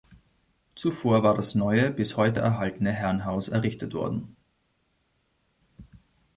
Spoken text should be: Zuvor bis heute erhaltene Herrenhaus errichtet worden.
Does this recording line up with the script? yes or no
no